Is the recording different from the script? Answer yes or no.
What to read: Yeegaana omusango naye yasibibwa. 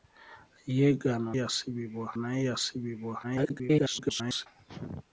yes